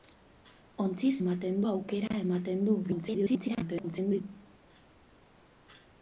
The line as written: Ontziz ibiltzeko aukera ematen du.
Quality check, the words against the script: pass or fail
fail